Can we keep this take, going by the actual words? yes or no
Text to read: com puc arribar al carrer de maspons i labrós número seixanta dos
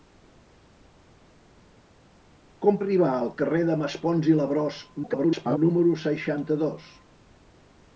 no